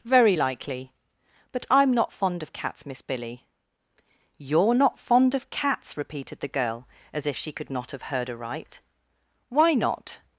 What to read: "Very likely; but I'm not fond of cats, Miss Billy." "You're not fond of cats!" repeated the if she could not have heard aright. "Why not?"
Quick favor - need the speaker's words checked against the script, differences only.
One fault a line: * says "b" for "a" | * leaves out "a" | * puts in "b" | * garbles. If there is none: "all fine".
* puts in "girl as"